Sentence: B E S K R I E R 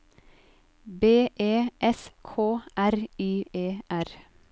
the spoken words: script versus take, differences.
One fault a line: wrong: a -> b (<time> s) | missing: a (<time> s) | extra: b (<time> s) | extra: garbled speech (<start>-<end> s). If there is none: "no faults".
no faults